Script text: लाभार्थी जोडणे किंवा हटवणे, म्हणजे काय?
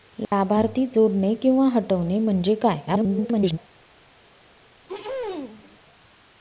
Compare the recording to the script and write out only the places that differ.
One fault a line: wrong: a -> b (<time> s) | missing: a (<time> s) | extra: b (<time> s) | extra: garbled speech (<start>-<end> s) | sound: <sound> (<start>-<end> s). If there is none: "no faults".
extra: garbled speech (2.9-3.6 s)
sound: throat clearing (4.8-5.8 s)